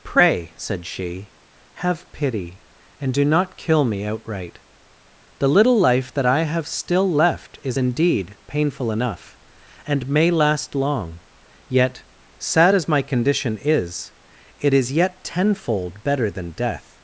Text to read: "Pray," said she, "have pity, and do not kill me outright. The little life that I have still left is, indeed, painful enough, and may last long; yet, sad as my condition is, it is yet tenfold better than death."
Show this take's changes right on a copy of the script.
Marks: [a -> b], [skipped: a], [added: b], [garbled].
"Pray," said she, "have pity, and do not kill me outright. The little life that I have still left is, indeed, painful enough, and may last long; yet, sad as my condition is, it is yet tenfold better than death."